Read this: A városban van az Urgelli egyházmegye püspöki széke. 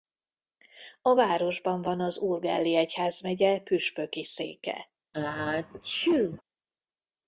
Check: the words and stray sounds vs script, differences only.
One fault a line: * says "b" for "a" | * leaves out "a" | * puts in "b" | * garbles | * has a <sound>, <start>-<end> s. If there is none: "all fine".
* has a sneeze, 5.1-6.4 s